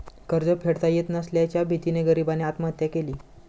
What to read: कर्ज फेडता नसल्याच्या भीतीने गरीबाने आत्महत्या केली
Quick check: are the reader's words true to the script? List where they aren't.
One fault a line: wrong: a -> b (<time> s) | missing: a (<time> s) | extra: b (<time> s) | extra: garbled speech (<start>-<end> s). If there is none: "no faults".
extra: येत (0.9 s)